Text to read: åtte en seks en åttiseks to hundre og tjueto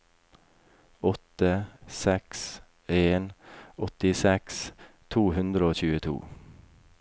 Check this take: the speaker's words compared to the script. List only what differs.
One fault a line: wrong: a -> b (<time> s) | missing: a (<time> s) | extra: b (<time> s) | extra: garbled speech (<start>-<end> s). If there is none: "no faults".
missing: en (1.6 s)